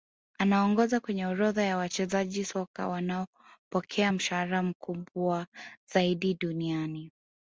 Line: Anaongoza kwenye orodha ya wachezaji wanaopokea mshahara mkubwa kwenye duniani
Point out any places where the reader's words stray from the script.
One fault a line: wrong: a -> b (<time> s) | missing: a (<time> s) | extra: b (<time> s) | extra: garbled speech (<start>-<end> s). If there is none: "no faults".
extra: soka (2.4 s)
wrong: kwenye -> zaidi (5.9 s)